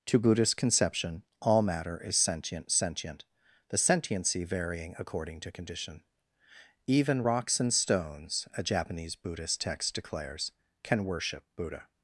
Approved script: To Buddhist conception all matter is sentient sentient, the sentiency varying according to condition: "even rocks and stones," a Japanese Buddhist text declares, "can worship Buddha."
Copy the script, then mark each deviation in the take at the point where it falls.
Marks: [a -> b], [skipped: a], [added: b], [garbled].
To Buddhist conception all matter is sentient sentient, the sentiency varying according to condition: "even rocks and stones," a Japanese Buddhist text declares, "can worship Buddha."